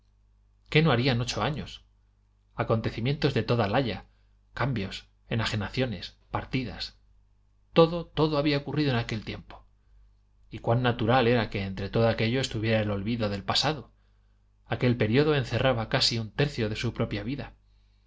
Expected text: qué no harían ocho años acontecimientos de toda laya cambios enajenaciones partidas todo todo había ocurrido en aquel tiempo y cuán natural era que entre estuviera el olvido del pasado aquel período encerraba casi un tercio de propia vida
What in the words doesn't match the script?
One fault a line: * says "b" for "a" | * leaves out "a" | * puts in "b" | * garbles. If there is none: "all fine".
* puts in "todo aquello"
* puts in "su"